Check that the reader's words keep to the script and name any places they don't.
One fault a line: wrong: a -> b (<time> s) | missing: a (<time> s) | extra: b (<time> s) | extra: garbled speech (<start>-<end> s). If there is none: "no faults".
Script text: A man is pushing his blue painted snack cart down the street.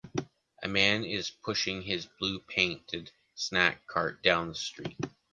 no faults